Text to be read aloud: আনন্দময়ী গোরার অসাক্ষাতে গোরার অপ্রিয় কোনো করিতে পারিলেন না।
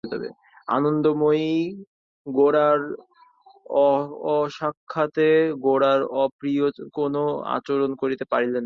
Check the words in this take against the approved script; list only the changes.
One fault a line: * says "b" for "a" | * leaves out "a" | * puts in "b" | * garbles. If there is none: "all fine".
* puts in "আচরণ"